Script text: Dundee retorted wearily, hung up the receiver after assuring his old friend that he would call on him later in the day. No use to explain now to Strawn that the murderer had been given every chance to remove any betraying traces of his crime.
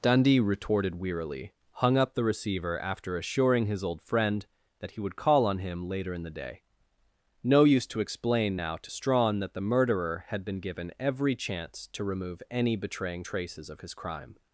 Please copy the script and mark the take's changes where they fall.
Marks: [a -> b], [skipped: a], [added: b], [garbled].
Dundee retorted wearily, hung up the receiver after assuring his old friend that he would call on him later in the day. No use to explain now to Strawn that the murderer had been given every chance to remove any betraying traces of his crime.